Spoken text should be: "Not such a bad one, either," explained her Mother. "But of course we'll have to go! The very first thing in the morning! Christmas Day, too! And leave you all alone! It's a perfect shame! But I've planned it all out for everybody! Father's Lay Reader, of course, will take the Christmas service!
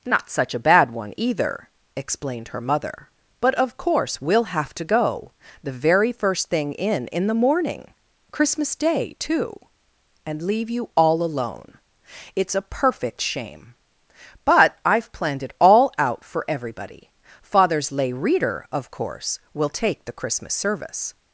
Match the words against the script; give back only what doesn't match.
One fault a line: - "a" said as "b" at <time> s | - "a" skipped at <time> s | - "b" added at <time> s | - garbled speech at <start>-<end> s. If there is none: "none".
- "in" added at 7.1 s